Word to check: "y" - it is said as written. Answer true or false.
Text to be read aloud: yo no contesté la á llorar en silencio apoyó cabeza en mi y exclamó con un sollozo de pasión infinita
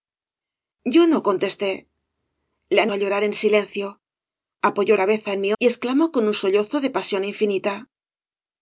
true